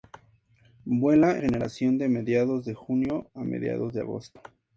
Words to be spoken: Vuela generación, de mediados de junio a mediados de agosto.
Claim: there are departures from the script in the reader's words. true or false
false